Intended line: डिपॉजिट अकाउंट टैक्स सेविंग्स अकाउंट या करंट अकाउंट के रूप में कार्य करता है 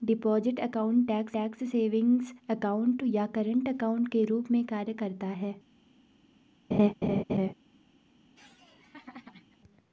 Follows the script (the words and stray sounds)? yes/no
no